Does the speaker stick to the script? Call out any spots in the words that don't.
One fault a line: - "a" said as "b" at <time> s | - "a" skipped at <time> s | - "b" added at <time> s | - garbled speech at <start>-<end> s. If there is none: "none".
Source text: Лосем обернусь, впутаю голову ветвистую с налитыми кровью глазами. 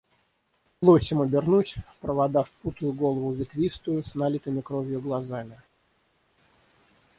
- "в провода" added at 1.8 s